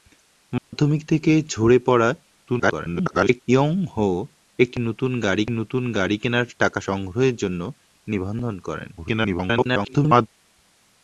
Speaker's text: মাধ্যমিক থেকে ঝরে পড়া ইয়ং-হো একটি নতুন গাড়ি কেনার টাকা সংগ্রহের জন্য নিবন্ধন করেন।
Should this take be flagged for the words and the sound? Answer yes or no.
yes